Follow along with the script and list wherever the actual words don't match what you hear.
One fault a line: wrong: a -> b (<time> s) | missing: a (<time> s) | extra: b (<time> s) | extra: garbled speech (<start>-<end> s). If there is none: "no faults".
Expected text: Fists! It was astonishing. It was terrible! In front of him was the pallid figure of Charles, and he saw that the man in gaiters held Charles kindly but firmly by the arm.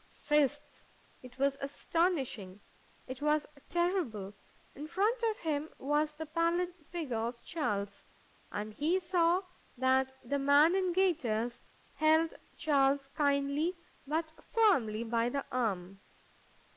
no faults